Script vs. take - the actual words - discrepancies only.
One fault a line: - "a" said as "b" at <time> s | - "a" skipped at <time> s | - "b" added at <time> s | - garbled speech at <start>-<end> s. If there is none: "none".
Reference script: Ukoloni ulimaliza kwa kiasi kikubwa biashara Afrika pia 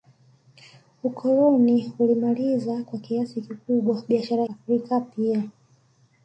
none